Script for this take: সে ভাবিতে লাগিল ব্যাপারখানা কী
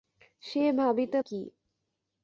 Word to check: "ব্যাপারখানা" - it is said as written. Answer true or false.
false